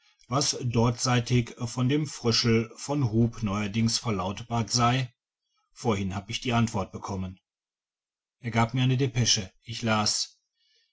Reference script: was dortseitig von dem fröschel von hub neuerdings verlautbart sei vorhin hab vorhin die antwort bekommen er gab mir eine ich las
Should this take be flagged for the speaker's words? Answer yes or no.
yes